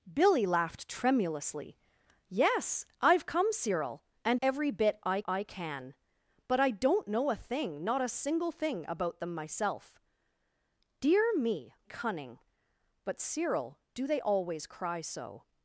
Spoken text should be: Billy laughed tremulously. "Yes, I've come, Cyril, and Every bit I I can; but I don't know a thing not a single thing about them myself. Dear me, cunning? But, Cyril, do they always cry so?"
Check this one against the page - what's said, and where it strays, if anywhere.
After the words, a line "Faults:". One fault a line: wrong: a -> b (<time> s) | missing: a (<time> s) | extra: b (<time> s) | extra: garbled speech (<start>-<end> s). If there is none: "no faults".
Billy laughed tremulously. "Yes, I've come, Cyril, and Every bit I I can; but I don't know a thing not a single thing about them myself. Dear me, cunning? But, Cyril, do they always cry so?"
Faults:
no faults